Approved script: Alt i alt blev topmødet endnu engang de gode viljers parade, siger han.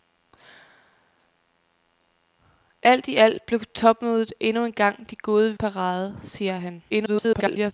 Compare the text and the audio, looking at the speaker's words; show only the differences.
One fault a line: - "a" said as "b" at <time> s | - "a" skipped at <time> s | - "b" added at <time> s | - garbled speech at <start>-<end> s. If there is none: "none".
- "viljers" skipped at 5.6 s
- garbled speech at 6.9-7.7 s